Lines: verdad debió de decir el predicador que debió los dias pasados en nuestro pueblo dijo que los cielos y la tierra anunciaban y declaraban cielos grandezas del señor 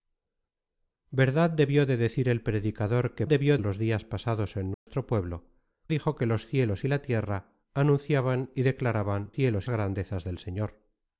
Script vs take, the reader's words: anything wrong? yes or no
no